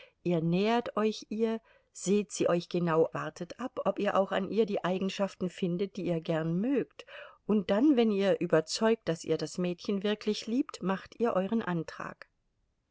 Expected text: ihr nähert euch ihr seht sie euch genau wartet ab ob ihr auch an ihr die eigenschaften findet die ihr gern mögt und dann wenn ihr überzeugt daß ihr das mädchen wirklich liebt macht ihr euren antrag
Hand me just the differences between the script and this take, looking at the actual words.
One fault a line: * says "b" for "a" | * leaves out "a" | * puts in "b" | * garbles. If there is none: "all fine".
all fine